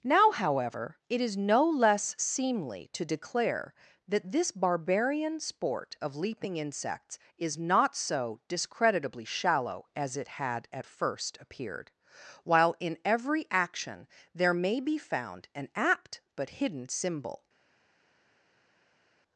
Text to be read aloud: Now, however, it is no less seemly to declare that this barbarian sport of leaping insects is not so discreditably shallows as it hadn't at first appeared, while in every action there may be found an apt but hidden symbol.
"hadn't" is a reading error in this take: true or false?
true